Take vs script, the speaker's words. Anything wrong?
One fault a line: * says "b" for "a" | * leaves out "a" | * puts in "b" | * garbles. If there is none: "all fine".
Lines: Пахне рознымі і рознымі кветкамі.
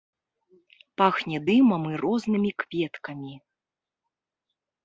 * says "дымам" for "рознымі"